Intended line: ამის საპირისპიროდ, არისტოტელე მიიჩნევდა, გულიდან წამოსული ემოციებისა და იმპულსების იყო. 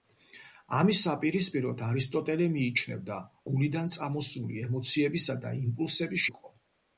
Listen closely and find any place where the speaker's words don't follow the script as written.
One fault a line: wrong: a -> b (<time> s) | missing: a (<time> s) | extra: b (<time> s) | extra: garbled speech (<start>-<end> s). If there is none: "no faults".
no faults